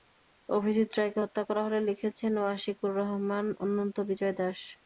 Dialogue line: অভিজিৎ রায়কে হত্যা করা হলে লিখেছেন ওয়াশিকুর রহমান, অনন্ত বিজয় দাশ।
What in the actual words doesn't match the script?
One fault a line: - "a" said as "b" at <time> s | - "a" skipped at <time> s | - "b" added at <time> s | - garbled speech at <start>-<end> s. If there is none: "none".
none